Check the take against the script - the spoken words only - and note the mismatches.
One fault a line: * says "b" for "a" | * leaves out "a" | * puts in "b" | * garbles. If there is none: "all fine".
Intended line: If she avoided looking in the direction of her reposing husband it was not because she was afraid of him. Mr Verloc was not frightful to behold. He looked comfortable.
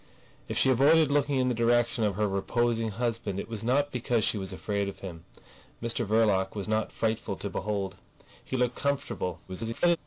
* garbles